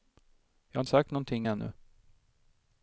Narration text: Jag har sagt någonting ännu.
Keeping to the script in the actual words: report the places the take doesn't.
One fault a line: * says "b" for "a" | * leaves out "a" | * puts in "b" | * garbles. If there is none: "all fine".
all fine